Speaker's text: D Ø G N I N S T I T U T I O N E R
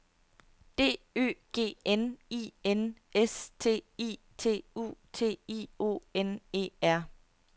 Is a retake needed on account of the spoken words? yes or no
no